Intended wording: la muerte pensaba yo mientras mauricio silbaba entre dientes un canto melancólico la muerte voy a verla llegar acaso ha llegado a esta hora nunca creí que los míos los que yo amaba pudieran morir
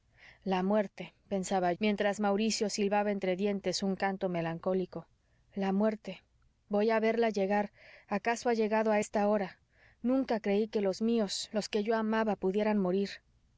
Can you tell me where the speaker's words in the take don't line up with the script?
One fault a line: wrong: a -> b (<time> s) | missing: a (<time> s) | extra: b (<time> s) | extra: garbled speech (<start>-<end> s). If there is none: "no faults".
missing: yo (1.7 s)